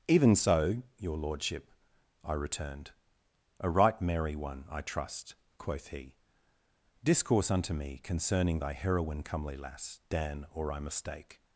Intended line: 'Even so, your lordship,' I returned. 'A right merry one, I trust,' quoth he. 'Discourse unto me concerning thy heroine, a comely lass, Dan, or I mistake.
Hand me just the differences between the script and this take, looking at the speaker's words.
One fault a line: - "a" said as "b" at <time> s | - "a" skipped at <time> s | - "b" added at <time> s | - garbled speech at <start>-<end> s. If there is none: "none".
- "a" skipped at 9.2 s